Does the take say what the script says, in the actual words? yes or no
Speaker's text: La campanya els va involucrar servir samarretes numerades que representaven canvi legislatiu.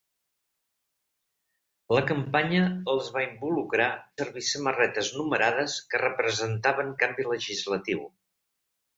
yes